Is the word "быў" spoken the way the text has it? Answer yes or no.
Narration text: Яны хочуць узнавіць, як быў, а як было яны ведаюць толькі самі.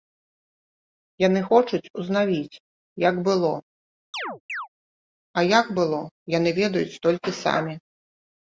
no